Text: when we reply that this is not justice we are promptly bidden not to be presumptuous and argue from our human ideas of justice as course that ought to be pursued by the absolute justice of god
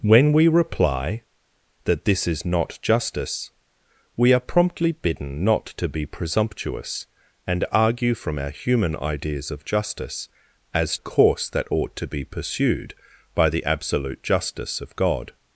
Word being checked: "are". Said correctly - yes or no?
yes